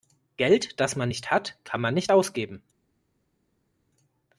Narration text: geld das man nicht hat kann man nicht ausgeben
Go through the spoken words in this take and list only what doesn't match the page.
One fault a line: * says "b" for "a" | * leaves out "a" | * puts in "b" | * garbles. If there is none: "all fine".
all fine